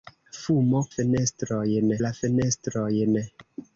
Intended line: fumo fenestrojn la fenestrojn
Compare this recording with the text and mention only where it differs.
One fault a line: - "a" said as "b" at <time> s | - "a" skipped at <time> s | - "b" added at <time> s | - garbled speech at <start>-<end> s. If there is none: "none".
none